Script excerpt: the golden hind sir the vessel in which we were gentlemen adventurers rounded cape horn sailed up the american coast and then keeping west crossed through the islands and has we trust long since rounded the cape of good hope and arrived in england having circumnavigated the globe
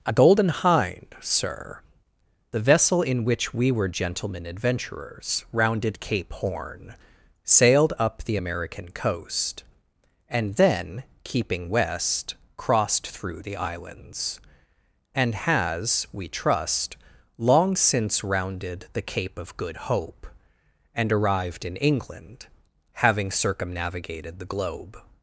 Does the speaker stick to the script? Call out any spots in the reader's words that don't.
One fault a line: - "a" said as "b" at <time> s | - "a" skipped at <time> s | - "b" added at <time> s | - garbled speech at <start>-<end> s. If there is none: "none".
- "the" said as "a" at 0.0 s